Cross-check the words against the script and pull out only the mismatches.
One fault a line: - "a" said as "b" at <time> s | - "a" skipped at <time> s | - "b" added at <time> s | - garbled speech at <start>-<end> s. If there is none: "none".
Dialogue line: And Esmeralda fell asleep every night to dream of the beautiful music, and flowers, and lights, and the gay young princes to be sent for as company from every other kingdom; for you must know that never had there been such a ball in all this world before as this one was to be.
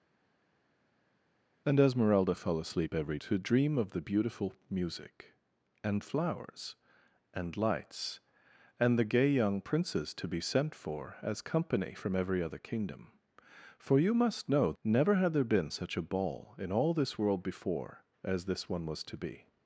- "night" skipped at 3.2 s
- "that" skipped at 14.7 s